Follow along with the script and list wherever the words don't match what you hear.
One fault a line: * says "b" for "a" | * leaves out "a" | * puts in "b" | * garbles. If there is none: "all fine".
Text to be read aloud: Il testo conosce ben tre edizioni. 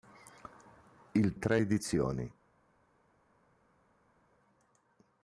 * leaves out "testo conosce ben"